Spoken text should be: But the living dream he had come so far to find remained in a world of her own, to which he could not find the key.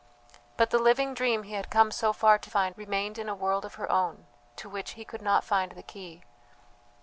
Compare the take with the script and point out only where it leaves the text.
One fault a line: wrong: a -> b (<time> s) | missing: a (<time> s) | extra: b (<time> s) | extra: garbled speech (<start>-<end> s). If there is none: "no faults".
no faults